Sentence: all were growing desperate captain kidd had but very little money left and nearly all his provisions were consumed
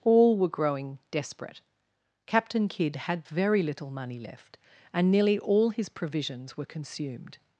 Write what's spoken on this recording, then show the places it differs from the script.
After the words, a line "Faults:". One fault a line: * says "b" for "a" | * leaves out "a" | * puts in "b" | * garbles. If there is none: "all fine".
all were growing desperate captain kidd had very little money left and nearly all his provisions were consumed
Faults:
* leaves out "but"